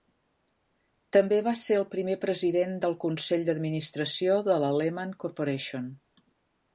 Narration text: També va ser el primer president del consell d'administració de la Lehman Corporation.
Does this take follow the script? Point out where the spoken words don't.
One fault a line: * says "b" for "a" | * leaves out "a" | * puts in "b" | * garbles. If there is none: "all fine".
all fine